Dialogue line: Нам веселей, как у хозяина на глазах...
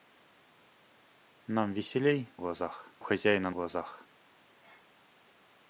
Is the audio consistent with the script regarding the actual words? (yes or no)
no